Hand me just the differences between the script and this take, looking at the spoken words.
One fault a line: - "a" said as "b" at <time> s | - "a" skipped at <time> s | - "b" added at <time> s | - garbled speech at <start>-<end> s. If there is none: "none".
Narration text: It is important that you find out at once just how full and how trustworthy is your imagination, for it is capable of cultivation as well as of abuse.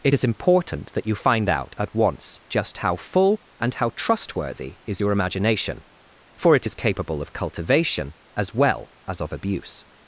none